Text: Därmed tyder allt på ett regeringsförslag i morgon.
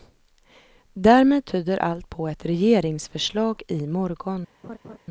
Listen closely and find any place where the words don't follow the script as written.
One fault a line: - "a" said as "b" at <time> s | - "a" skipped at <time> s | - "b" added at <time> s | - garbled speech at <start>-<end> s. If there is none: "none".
none